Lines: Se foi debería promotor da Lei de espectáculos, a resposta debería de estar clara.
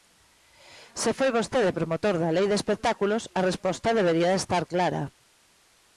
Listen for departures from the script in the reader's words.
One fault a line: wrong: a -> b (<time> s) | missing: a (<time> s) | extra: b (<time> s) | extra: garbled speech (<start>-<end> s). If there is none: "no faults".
wrong: debería -> vostede (1.4 s)